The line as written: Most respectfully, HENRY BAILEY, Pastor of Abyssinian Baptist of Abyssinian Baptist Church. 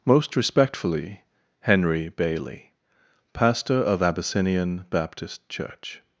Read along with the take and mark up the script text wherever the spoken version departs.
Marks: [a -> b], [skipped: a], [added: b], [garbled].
Most respectfully, HENRY BAILEY, Pastor of Abyssinian Baptist [skipped: of Abyssinian Baptist] Church.